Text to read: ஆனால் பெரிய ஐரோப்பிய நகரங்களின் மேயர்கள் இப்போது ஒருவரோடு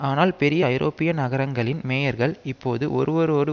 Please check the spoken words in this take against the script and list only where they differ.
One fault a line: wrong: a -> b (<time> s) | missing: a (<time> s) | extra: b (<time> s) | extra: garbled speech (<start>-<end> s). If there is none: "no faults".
no faults